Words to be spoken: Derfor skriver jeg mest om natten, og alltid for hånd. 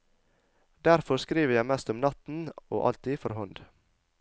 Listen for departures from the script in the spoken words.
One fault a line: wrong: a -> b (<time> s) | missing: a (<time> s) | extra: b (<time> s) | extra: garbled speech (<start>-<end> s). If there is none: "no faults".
no faults